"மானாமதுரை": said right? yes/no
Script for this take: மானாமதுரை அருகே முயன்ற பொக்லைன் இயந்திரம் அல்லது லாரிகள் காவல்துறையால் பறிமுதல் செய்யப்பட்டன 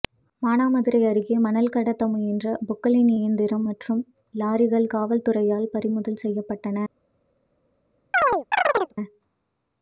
yes